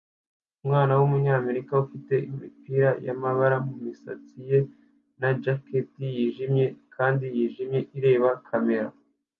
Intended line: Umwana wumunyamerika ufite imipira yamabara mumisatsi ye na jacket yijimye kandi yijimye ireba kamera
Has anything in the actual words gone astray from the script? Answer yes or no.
no